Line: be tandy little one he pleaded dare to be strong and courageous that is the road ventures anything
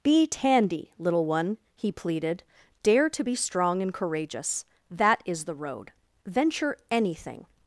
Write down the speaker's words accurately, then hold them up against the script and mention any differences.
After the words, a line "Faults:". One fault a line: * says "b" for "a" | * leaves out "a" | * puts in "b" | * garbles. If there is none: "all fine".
be tandy little one he pleaded dare to be strong and courageous that is the road venture anything
Faults:
* says "venture" for "ventures"